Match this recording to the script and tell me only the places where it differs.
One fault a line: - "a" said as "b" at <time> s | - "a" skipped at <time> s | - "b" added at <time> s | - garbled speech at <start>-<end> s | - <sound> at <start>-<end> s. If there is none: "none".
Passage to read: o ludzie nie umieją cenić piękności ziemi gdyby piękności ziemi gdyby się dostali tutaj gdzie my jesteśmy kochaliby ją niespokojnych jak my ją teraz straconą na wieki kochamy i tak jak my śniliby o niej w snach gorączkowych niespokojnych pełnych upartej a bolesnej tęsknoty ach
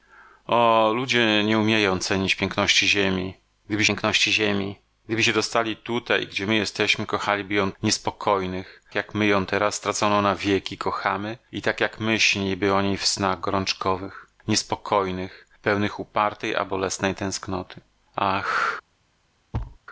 - thud at 19.5-19.8 s